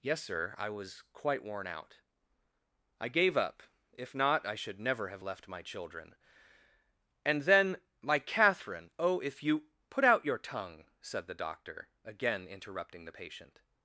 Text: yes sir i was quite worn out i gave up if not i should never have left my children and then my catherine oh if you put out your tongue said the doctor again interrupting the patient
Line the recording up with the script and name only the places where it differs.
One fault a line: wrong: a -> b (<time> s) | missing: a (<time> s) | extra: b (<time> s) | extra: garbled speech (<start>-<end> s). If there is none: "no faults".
no faults